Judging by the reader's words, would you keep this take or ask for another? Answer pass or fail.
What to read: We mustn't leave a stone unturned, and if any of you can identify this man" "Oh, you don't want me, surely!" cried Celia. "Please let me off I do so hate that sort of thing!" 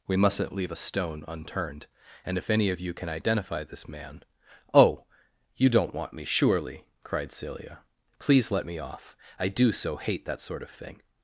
pass